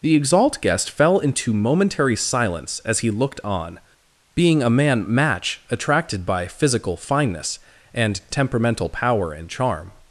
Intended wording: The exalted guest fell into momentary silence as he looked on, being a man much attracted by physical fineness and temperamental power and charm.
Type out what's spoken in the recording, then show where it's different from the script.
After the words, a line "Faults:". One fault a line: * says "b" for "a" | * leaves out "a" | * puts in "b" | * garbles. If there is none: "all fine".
The exalt guest fell into momentary silence as he looked on, being a man match attracted by physical fineness and temperamental power and charm.
Faults:
* says "exalt" for "exalted"
* says "match" for "much"